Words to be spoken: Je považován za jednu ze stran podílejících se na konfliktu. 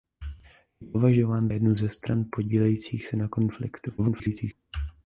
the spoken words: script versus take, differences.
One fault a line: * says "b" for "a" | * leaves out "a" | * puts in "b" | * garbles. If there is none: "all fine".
* leaves out "za"
* garbles